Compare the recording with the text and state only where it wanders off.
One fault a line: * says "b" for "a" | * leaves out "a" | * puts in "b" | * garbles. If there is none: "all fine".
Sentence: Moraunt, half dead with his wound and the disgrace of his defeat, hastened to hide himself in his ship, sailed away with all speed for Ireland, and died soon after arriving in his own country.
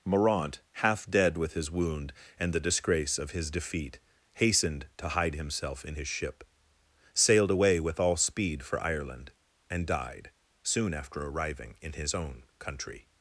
all fine